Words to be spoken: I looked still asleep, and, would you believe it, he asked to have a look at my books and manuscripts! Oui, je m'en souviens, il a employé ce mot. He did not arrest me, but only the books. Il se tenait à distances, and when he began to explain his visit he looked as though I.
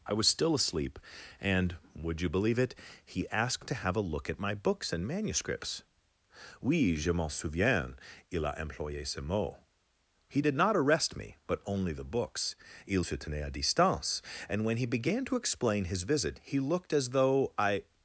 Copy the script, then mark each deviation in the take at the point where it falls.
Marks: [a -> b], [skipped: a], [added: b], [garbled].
I [looked -> was] still asleep, and, would you believe it, he asked to have a look at my books and manuscripts! Oui, je m'en souviens, il a employé ce mot. He did not arrest me, but only the books. Il se tenait à [distances, -> distance] and when he began to explain his visit he looked as though I.